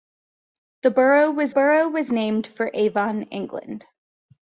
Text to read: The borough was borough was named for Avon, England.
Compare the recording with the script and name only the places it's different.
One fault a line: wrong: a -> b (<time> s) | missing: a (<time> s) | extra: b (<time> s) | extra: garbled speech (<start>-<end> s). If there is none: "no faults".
no faults